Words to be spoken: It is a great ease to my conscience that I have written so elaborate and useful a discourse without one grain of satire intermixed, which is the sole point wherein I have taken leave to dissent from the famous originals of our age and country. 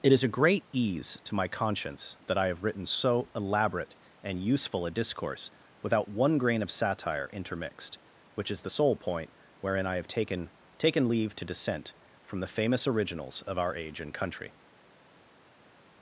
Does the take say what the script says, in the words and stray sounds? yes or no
no